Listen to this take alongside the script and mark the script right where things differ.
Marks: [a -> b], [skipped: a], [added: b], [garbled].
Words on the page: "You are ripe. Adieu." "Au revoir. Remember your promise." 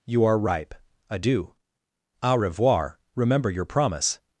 "You are ripe. Adieu." "Au revoir. Remember your promise."